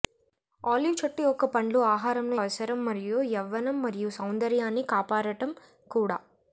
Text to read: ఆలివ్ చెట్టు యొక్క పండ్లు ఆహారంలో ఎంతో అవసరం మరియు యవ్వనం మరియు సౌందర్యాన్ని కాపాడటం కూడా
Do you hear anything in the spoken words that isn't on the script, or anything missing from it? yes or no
yes